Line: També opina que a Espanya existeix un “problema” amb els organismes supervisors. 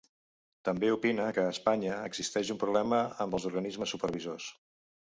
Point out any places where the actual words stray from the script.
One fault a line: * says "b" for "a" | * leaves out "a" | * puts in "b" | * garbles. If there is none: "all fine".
all fine